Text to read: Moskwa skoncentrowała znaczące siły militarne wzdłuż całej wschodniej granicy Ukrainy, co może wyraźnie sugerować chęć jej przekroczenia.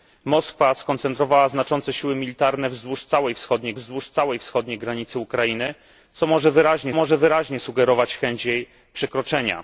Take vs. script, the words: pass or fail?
fail